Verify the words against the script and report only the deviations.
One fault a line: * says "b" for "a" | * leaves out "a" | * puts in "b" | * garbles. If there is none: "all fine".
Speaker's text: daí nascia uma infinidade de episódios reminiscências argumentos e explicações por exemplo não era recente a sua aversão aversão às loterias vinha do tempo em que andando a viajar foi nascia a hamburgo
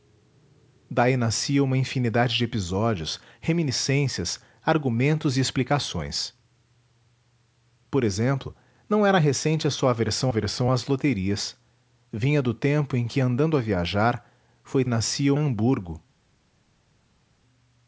all fine